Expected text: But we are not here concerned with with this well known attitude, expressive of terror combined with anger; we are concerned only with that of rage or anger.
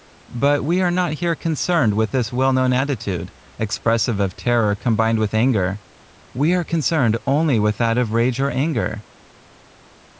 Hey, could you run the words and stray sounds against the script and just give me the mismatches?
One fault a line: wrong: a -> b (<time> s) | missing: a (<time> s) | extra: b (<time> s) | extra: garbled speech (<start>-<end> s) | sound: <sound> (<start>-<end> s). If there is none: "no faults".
missing: with (2.1 s)